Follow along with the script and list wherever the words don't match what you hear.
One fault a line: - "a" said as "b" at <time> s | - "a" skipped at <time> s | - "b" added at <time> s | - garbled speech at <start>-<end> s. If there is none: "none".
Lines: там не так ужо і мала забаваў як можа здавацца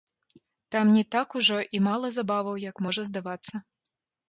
none